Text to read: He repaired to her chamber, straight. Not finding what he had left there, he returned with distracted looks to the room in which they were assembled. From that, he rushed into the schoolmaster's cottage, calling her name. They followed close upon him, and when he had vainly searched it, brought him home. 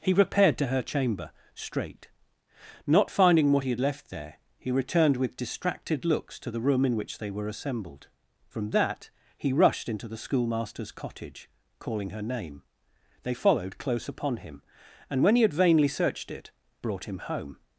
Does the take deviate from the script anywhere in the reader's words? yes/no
no